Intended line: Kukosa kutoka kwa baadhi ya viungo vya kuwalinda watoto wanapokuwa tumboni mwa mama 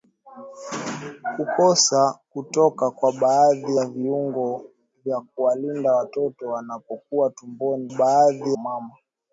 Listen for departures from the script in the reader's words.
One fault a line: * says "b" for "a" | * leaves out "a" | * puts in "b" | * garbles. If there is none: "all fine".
* says "baadhi" for "mwa"